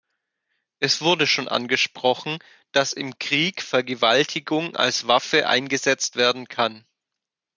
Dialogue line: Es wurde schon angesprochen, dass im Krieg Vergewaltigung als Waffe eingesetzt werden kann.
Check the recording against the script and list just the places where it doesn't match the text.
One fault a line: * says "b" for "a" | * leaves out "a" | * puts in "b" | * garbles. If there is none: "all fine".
all fine